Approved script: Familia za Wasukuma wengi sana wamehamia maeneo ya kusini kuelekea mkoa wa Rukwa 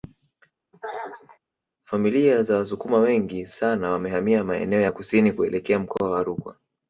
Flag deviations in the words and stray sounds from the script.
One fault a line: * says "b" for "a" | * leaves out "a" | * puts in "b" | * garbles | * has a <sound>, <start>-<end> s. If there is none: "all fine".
* has a throat clearing, 0.7-1.4 s